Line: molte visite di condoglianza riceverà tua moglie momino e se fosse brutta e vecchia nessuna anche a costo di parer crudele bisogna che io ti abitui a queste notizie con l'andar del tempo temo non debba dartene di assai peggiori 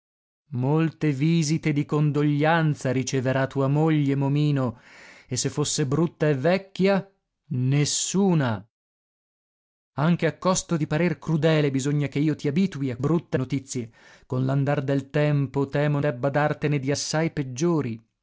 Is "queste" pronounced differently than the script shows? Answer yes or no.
yes